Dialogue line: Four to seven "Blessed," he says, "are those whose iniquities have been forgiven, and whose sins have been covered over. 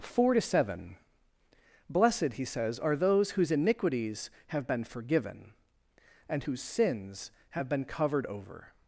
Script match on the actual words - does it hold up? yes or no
yes